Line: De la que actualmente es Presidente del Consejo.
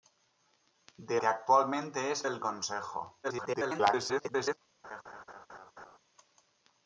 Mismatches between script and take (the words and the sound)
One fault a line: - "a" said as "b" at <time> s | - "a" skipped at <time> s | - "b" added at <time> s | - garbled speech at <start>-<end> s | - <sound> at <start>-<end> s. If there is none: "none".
- "la" skipped at 1.2 s
- "Presidente" skipped at 2.2 s
- garbled speech at 3.2-4.6 s
- laugh at 4.8-6.0 s